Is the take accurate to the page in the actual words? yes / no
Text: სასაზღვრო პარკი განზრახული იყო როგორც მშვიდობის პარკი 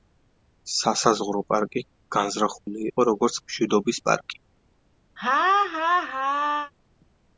yes